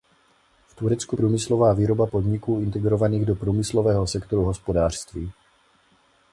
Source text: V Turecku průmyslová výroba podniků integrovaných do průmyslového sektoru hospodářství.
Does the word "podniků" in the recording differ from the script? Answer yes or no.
no